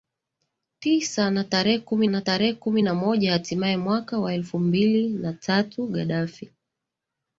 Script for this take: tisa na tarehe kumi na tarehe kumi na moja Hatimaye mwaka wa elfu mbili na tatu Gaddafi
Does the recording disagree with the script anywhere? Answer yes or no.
no